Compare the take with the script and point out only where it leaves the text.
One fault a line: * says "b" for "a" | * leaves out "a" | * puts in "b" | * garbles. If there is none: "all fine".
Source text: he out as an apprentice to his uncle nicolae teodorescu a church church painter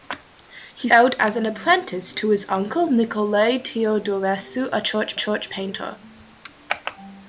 all fine